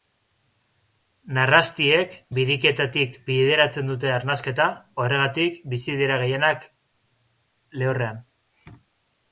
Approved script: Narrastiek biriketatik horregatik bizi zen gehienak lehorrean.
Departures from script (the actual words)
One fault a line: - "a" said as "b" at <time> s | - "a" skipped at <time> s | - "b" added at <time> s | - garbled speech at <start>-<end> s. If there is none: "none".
- "bideratzen dute arnasketa" added at 3.3 s
- "zen" said as "dira" at 6.0 s